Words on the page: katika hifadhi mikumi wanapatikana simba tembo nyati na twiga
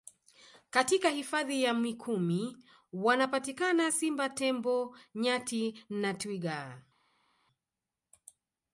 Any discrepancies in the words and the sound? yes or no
yes